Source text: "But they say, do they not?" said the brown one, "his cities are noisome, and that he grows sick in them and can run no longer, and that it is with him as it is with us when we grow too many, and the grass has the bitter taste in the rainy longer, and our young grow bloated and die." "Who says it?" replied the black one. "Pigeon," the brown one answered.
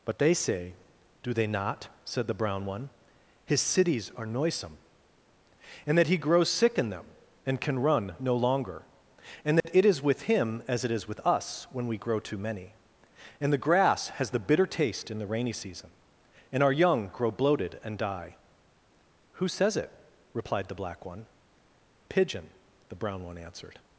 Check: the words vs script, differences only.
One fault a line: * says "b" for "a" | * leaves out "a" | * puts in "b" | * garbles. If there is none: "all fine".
* says "season" for "longer"